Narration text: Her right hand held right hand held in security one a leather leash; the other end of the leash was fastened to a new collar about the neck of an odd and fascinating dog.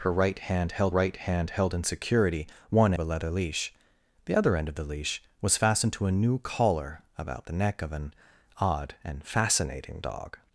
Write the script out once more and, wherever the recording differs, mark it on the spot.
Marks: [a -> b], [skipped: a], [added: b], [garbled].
Her right hand held right hand held in security one a leather leash; the other end of the leash was fastened to a new collar about the neck of an odd and fascinating dog.